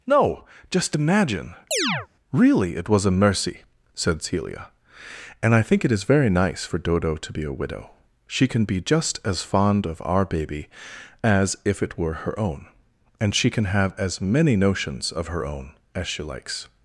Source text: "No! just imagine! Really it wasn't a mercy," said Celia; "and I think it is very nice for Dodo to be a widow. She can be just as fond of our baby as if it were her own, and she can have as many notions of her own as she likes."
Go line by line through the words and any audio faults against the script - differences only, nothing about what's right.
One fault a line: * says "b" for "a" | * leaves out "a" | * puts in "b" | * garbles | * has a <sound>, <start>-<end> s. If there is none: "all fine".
* has a chirp, 1.7-2.1 s
* says "was" for "wasn't"